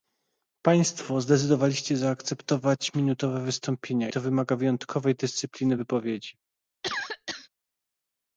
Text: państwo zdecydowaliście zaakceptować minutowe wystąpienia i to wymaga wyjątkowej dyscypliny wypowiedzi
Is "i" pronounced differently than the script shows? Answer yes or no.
yes